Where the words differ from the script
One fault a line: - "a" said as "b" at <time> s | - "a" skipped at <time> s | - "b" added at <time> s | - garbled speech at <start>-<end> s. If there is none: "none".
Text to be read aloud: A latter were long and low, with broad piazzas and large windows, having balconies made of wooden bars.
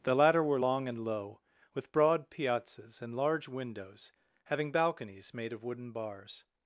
- "A" said as "The" at 0.0 s